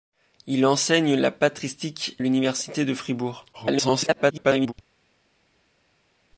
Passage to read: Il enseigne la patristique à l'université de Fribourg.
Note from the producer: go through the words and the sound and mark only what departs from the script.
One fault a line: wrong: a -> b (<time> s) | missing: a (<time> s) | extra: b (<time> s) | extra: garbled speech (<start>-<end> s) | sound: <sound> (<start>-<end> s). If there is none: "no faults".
missing: à (2.2 s)
extra: garbled speech (3.5-4.7 s)